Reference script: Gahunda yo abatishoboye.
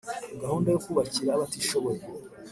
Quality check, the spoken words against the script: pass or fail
fail